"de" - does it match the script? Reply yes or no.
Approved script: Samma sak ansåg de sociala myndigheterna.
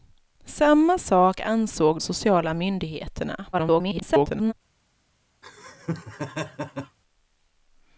no